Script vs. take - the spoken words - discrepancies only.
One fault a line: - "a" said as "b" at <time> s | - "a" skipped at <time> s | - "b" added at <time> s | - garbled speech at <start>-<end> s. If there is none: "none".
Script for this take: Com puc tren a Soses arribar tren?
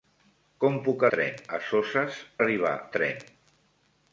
none